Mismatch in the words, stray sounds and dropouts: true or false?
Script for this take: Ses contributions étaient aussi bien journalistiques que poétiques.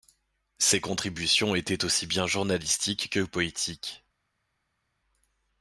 false